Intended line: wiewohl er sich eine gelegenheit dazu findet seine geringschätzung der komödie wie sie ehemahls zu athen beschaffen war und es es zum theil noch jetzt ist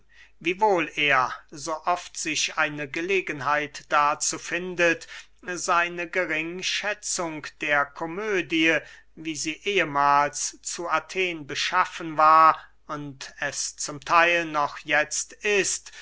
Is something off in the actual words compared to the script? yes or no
yes